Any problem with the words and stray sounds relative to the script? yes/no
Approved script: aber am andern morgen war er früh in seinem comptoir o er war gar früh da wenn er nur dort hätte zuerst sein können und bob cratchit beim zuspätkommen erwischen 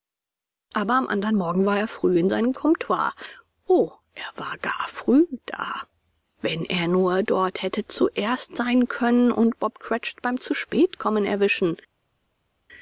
no